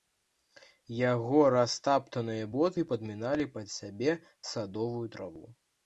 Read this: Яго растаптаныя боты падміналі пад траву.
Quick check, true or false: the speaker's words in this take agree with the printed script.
false